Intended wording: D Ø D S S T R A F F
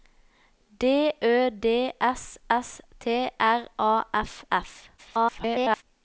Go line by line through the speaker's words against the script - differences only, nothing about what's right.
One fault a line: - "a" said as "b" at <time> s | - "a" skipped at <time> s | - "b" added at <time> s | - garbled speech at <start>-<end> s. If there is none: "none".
- garbled speech at 5.0-5.8 s